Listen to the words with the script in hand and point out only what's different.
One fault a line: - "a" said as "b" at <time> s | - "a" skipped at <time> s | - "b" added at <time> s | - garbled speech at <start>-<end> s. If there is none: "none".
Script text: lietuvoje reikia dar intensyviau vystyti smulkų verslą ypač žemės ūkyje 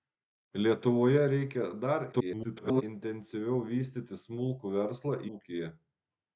- garbled speech at 2.1-2.8 s
- "ypač žemės" skipped at 5.1 s